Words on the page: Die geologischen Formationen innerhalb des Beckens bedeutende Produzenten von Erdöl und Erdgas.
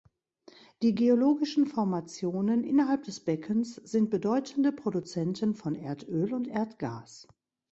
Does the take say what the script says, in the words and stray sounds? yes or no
no